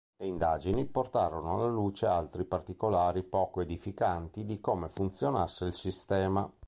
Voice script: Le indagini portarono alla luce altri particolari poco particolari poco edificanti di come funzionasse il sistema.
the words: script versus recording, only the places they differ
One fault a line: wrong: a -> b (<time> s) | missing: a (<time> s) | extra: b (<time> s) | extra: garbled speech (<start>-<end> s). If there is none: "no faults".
missing: particolari poco (3.6 s)